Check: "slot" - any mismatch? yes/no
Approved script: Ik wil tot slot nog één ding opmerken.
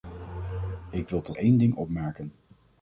yes